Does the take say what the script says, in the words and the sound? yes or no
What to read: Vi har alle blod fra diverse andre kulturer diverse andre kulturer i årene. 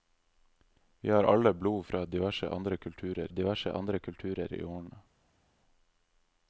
yes